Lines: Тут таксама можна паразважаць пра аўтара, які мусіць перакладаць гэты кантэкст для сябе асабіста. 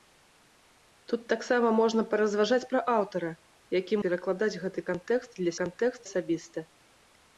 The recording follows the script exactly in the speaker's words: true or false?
false